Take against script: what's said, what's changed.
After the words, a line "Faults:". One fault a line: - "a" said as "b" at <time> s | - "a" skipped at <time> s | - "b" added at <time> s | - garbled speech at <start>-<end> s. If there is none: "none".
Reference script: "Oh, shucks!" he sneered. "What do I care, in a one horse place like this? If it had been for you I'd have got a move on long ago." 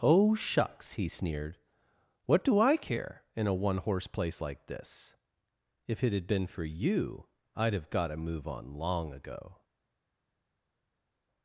"Oh, shucks!" he sneered. "What do I care, in a one horse place like this? If it had been for you I'd have got a move on long ago."
Faults:
none